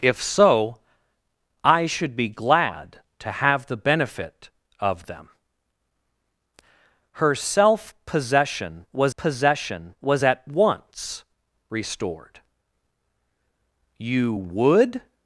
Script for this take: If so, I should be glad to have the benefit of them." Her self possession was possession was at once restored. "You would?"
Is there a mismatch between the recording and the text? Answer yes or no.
no